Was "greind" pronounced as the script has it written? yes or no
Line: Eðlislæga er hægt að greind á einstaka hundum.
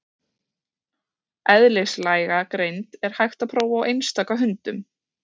no